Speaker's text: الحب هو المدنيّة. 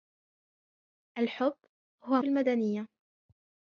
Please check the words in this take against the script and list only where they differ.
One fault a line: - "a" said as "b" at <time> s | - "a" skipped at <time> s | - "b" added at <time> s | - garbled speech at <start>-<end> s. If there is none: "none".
none